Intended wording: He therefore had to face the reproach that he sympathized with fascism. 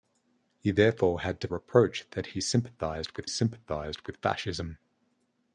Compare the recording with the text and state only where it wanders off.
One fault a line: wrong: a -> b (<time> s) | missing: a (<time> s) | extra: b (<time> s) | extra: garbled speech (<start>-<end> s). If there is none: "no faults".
missing: face the (1.5 s)
extra: sympathized with (3.3 s)